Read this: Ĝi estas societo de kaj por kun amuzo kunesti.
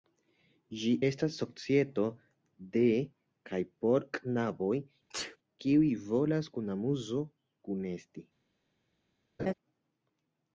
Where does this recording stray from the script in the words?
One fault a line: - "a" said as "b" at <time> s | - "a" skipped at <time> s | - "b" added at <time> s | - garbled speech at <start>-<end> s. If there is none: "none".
- "knaboj kiuj volas" added at 4.2 s